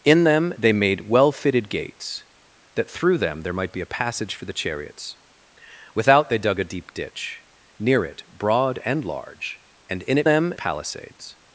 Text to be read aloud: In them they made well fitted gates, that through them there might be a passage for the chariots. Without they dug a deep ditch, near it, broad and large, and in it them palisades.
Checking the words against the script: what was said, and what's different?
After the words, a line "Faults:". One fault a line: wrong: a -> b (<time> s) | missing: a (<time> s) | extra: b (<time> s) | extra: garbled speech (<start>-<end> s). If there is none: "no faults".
In them they made well fitted gates, that through them there might be a passage for the chariots. Without they dug a deep ditch, near it, broad and large, and in it them palisades.
Faults:
no faults